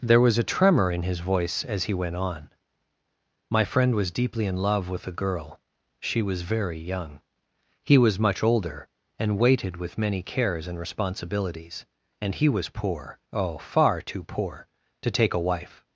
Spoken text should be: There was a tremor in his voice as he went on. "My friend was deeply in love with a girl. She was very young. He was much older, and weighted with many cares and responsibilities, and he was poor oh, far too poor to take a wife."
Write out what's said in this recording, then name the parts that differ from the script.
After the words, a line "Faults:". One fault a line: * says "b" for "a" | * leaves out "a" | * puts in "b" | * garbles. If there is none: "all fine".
There was a tremor in his voice as he went on. "My friend was deeply in love with a girl. She was very young. He was much older, and weighted with many cares and responsibilities, and he was poor oh, far too poor to take a wife."
Faults:
all fine